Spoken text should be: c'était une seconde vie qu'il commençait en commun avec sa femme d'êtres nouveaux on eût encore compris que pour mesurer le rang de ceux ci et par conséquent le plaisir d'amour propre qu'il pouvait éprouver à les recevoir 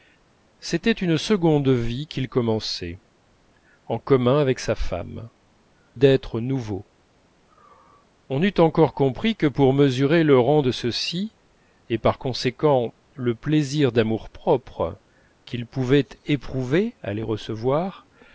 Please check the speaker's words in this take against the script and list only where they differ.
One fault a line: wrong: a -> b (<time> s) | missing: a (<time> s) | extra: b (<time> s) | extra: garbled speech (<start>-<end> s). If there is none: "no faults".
no faults